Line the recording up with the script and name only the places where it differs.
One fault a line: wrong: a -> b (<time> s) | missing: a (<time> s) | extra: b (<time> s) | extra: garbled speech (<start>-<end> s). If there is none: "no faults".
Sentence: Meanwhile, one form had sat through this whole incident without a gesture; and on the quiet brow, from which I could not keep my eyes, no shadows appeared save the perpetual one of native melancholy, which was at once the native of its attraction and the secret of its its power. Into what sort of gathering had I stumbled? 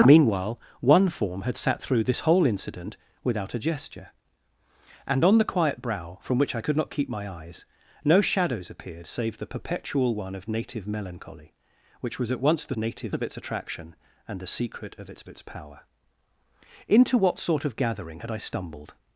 no faults